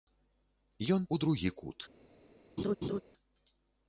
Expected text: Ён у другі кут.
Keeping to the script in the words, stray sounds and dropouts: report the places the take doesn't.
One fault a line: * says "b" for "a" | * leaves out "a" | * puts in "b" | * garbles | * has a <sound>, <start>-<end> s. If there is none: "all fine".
* has a laugh, 2.6-3.0 s